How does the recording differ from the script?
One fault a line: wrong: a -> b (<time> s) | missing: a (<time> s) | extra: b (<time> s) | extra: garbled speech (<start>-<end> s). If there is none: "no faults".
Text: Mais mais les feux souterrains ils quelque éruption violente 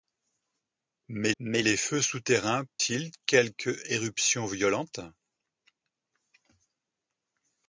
no faults